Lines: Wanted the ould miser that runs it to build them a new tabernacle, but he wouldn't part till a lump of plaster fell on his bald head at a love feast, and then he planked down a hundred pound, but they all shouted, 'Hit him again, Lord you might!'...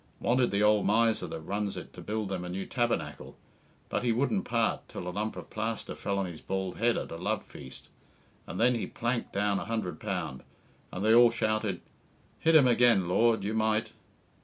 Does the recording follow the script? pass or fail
fail